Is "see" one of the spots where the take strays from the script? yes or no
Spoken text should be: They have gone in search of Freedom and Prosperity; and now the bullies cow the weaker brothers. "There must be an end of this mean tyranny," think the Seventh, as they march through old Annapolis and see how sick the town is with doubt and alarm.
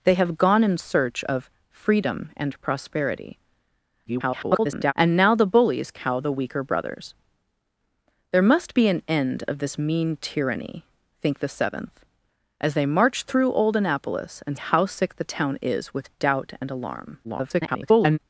yes